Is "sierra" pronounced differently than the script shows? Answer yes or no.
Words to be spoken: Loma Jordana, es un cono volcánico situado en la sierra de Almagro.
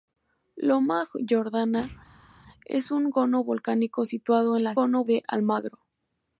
yes